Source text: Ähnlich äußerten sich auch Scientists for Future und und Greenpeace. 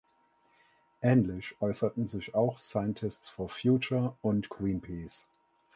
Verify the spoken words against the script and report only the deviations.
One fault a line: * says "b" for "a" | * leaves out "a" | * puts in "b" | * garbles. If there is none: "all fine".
* leaves out "und"